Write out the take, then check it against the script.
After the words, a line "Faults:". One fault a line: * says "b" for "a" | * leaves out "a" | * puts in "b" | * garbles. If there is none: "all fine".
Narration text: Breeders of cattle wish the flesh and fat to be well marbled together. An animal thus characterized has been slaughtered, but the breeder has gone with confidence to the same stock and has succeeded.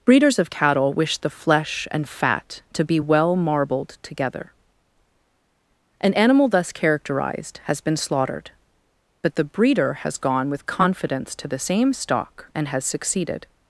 Breeders of cattle wish the flesh and fat to be well marbled together. An animal thus characterized has been slaughtered, but the breeder has gone with confidence to the same stock and has succeeded.
Faults:
all fine